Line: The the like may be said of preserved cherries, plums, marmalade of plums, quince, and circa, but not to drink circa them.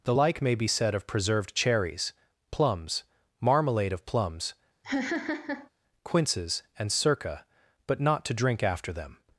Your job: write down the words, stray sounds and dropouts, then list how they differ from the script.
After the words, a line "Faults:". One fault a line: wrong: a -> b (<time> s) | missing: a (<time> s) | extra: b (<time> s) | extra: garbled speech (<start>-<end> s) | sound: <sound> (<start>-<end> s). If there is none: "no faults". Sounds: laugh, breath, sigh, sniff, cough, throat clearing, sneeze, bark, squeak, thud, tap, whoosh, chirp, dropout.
The like may be said of preserved cherries, plums, marmalade of plums, quinces, and circa, but not to drink after them.
Faults:
missing: the (0.1 s)
sound: laugh (4.8-5.7 s)
wrong: quince -> quinces (6.0 s)
wrong: circa -> after (8.6 s)